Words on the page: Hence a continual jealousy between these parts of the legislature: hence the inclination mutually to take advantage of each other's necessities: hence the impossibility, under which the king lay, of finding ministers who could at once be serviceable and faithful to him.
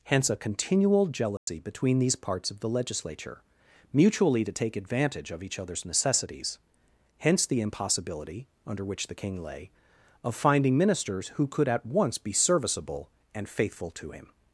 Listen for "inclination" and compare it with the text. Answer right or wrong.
wrong